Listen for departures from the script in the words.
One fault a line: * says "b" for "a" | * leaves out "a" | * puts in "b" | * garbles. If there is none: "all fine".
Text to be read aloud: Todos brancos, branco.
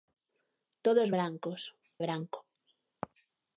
all fine